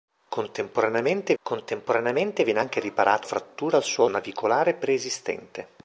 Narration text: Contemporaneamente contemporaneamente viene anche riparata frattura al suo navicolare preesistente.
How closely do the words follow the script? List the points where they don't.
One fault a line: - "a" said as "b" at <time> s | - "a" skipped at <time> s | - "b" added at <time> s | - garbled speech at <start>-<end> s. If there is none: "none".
none